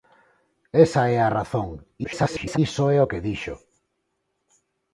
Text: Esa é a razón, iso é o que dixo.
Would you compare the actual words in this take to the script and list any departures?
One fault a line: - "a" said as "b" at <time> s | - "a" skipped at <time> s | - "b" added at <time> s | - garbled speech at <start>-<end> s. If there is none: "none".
- garbled speech at 2.0-2.6 s